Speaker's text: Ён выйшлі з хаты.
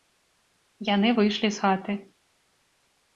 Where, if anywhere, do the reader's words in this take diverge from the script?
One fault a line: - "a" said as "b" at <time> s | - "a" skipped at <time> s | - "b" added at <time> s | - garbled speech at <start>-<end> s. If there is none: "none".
- "Ён" said as "Яны" at 0.9 s